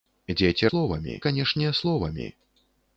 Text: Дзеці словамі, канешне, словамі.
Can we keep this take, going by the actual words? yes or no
yes